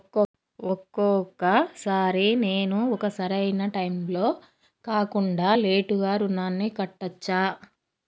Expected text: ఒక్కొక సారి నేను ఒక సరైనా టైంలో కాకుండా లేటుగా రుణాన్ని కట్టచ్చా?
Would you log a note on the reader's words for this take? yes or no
no